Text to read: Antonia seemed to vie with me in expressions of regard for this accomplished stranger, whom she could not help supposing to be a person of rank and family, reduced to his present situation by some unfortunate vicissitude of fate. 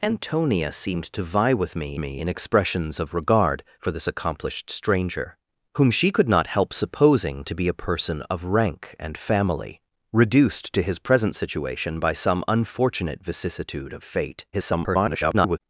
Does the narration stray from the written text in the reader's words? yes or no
yes